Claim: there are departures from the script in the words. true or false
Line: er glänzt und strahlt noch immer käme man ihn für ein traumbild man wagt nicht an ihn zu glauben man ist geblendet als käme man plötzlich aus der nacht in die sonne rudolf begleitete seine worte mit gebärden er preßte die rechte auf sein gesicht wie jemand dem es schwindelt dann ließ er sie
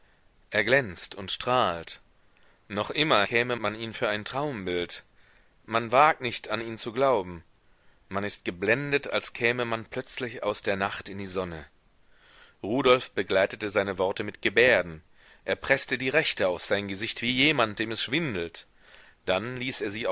false